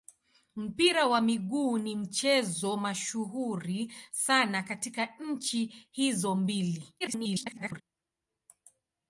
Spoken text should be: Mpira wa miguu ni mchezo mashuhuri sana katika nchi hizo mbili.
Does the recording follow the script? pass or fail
fail